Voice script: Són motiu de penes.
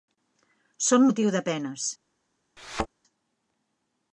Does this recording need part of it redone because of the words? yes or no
no